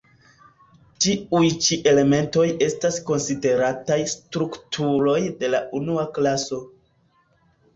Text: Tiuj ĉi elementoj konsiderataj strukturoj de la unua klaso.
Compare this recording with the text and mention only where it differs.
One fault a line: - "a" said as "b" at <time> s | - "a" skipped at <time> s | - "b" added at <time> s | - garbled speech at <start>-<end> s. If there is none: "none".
- "estas" added at 2.7 s